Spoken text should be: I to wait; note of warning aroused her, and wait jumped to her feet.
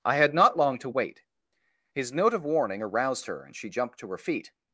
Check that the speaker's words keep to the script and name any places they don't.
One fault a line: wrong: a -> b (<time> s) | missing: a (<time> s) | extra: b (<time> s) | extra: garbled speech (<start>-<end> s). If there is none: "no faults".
extra: had not long (0.1 s)
extra: his (1.9 s)
wrong: wait -> she (3.5 s)